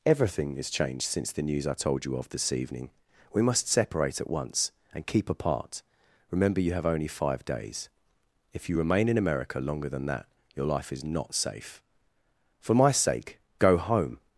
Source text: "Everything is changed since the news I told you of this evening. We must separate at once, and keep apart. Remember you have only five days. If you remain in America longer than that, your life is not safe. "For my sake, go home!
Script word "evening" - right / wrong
right